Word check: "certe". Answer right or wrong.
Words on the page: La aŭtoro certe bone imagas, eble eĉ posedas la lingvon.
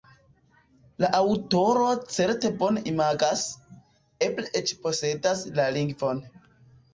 right